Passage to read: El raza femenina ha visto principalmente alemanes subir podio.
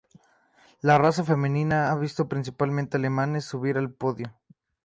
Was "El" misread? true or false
true